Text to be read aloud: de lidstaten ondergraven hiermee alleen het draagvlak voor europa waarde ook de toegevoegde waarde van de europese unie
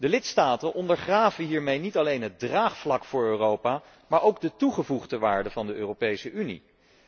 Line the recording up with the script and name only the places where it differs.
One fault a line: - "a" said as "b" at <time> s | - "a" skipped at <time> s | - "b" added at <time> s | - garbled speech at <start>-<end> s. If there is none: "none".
- "niet" added at 1.8 s
- "waarde" said as "maar" at 4.1 s